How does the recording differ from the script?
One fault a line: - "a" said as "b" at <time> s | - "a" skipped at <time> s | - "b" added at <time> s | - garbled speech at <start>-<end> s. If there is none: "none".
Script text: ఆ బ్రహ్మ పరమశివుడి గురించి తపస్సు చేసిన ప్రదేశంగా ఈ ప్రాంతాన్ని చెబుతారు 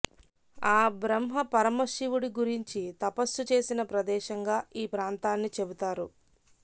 none